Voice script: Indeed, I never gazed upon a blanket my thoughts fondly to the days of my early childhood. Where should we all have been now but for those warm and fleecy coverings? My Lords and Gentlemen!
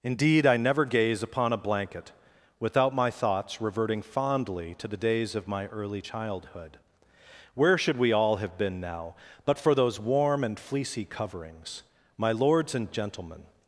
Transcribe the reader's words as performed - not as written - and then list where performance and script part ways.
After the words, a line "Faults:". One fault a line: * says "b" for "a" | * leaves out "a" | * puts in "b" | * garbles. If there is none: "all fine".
Indeed, I never gaze upon a blanket without my thoughts reverting fondly to the days of my early childhood. Where should we all have been now but for those warm and fleecy coverings? My Lords and Gentlemen!
Faults:
* says "gaze" for "gazed"
* puts in "without"
* puts in "reverting"